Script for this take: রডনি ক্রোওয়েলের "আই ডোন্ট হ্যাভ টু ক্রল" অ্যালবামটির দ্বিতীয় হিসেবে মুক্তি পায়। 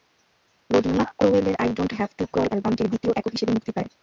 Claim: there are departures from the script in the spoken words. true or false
true